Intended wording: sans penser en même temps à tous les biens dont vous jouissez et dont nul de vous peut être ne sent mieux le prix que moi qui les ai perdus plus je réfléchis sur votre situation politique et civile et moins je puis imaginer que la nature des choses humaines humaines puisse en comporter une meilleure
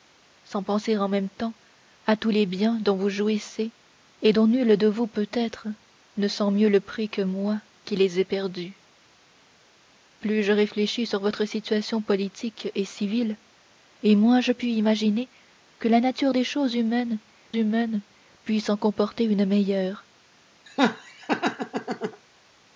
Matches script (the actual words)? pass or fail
pass